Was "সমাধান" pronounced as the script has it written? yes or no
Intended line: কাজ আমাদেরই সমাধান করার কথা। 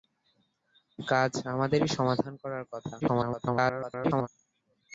yes